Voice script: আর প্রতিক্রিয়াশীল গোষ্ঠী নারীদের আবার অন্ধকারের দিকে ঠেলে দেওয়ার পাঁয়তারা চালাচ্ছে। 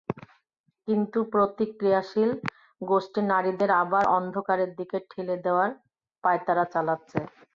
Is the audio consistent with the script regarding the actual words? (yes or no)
no